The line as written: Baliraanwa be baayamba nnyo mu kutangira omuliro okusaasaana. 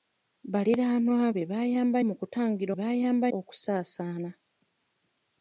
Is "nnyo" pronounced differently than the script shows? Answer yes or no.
yes